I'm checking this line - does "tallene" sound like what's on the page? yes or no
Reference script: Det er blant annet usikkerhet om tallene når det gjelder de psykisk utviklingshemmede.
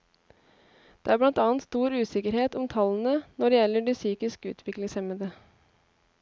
yes